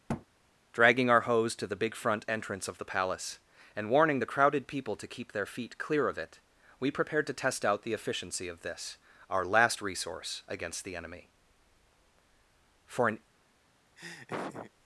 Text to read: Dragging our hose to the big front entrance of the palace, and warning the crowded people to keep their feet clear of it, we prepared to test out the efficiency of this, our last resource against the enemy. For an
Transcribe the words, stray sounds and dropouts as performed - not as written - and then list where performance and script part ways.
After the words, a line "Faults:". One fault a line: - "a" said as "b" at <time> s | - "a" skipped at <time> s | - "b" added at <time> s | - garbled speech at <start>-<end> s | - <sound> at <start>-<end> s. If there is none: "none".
Dragging our hose to the big front entrance of the palace, and warning the crowded people to keep their feet clear of it, we prepared to test out the efficiency of this, our last resource against the enemy. For an
Faults:
- thud at 0.1-0.3 s
- laugh at 14.0-14.7 s